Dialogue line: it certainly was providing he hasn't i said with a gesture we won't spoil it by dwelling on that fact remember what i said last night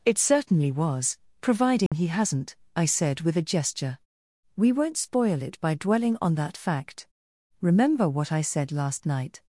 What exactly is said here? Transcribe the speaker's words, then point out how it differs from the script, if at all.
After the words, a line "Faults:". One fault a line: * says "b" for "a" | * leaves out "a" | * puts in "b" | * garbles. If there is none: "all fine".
it certainly was providing he hasn't i said with a gesture we won't spoil it by dwelling on that fact remember what i said last night
Faults:
all fine